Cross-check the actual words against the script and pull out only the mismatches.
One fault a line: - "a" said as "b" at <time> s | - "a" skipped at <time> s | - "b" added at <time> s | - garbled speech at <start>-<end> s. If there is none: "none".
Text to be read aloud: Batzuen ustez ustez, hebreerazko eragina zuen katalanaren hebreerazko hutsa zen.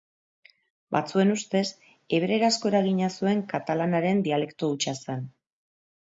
- "ustez" skipped at 1.6 s
- "hebreerazko" said as "dialekto" at 4.3 s